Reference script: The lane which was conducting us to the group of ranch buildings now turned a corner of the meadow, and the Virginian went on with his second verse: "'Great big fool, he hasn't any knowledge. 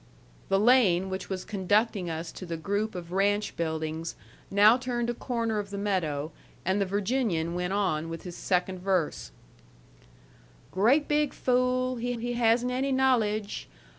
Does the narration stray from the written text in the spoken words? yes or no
yes